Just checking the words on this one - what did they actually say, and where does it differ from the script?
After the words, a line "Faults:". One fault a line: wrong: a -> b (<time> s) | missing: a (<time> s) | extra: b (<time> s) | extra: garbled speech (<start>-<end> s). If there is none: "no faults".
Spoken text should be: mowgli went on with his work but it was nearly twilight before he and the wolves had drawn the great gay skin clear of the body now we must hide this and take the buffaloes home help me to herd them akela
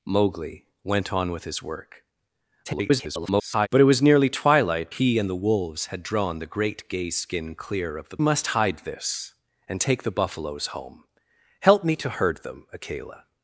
mowgli went on with his work [garbled] but it was nearly twilight he and the wolves had drawn the great gay skin clear of the must hide this and take the buffaloes home help me to herd them akela
Faults:
extra: garbled speech (2.7-3.7 s)
missing: before (4.9 s)
missing: body now we (8.2 s)